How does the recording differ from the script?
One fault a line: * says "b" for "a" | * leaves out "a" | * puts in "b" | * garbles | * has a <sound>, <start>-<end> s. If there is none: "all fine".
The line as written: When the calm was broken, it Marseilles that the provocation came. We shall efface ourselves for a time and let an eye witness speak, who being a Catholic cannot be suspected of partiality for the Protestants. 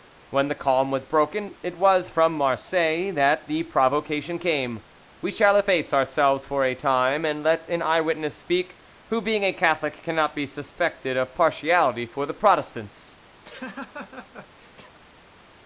* puts in "was from"
* has a laugh, 13.4-15.0 s